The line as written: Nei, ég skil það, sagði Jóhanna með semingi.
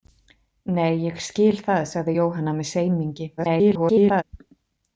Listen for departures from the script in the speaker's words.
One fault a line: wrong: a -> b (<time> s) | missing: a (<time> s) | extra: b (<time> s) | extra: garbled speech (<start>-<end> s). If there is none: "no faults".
extra: garbled speech (3.4-4.2 s)